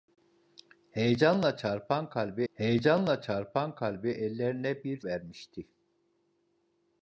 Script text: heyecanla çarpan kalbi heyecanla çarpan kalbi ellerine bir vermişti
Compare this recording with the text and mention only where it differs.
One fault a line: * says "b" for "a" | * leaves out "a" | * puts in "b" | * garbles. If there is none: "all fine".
all fine